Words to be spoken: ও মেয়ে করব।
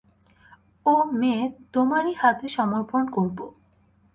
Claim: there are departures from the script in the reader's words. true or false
true